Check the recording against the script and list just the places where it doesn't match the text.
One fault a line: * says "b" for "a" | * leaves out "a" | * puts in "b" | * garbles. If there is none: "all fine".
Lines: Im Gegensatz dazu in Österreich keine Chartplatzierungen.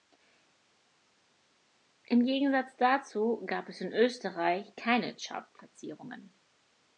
* puts in "gab es"